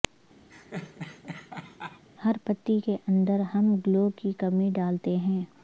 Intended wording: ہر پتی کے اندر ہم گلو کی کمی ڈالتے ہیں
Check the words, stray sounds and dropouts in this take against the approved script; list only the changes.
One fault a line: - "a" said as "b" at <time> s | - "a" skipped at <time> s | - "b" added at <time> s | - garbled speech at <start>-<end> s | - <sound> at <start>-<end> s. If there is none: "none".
- laugh at 0.5-2.0 s